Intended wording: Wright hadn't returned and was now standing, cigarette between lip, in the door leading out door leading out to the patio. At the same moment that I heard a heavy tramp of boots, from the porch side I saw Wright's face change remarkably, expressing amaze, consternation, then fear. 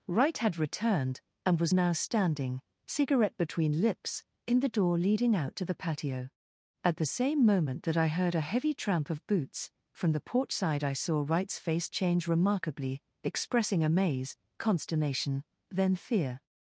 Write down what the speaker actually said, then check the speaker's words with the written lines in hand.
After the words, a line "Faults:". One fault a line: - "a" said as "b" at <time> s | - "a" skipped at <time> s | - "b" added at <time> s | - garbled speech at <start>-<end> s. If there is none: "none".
Wright had returned and was now standing, cigarette between lips, in the door leading out to the patio. At the same moment that I heard a heavy tramp of boots, from the porch side I saw Wright's face change remarkably, expressing amaze, consternation, then fear.
Faults:
- "hadn't" said as "had" at 0.4 s
- "lip" said as "lips" at 3.8 s
- "door leading out" skipped at 5.6 s